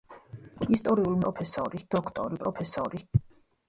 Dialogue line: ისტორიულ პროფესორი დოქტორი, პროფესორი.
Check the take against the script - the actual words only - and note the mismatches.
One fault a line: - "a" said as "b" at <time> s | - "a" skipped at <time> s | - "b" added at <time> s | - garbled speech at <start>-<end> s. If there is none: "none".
none